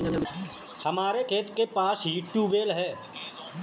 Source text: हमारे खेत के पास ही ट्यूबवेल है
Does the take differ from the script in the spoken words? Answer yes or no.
no